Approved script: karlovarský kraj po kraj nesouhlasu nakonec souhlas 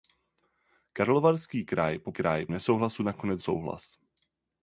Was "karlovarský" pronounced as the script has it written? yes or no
yes